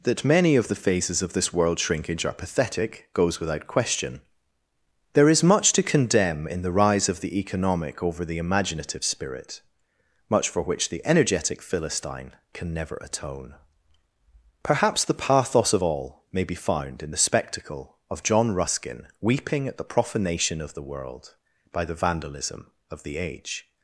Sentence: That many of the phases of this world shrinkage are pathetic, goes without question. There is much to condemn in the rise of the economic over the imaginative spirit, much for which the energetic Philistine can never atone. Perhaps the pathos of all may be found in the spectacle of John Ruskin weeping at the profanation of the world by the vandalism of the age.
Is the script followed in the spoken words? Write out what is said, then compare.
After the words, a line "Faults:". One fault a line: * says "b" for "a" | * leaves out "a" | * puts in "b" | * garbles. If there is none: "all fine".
That many of the phases of this world shrinkage are pathetic, goes without question. There is much to condemn in the rise of the economic over the imaginative spirit, much for which the energetic Philistine can never atone. Perhaps the pathos of all may be found in the spectacle of John Ruskin weeping at the profanation of the world by the vandalism of the age.
Faults:
all fine